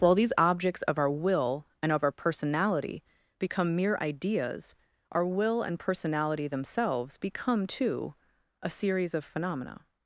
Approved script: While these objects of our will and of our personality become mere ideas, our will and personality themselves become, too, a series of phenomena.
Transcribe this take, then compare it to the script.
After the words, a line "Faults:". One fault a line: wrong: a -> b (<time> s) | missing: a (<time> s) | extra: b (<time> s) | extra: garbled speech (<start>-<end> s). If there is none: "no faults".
While these objects of our will and of our personality become mere ideas, our will and personality themselves become, too, a series of phenomena.
Faults:
no faults